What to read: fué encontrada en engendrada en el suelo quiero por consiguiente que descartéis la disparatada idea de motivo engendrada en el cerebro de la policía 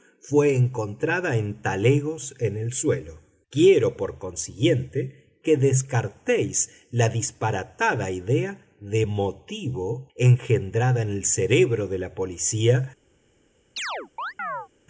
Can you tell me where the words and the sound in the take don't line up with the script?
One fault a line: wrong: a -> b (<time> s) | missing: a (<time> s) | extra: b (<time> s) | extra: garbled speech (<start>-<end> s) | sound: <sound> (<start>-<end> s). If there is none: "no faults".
wrong: engendrada -> talegos (1.6 s)
sound: chirp (13.8-14.7 s)